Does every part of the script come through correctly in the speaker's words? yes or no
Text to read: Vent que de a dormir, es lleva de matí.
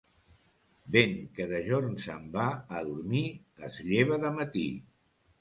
no